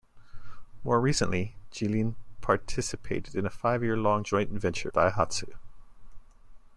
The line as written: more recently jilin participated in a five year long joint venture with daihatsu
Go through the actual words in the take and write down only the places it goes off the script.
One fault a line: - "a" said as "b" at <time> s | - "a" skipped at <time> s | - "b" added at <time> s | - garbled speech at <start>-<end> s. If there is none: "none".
- "with" skipped at 4.9 s